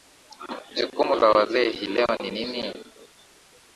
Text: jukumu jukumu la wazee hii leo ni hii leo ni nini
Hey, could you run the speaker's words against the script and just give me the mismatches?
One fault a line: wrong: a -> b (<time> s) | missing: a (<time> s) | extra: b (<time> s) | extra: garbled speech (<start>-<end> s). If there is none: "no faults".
missing: jukumu (1.1 s)
missing: hii leo ni (2.3 s)